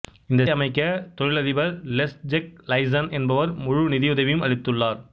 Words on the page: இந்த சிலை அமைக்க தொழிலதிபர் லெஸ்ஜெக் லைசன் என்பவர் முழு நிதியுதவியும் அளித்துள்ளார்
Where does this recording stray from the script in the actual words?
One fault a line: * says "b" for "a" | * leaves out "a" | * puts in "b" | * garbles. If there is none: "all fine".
* leaves out "சிலை"